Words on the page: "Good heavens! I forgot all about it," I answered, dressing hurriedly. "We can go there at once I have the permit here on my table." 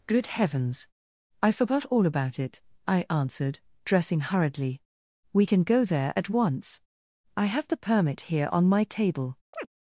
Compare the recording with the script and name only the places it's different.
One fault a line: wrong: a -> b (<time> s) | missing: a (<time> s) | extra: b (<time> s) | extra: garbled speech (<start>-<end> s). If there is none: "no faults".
no faults